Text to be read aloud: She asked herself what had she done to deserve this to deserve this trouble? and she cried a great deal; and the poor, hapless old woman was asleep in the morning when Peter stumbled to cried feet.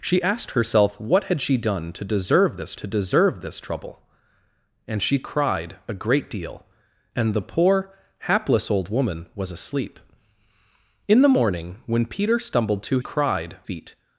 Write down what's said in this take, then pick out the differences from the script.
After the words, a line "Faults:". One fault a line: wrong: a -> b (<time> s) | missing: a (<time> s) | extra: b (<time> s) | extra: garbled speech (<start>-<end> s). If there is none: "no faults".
She asked herself what had she done to deserve this to deserve this trouble? and she cried a great deal; and the poor, hapless old woman was asleep in the morning when Peter stumbled to cried feet.
Faults:
no faults